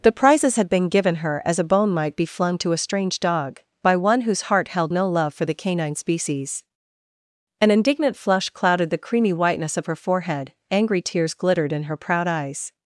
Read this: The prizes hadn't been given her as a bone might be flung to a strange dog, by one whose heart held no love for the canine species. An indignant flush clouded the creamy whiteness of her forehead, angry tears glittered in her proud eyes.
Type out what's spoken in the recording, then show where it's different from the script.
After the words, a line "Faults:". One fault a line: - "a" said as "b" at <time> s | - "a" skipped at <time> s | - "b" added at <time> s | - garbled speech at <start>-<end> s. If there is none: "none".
The prizes had been given her as a bone might be flung to a strange dog, by one whose heart held no love for the canine species. An indignant flush clouded the creamy whiteness of her forehead, angry tears glittered in her proud eyes.
Faults:
- "hadn't" said as "had" at 0.6 s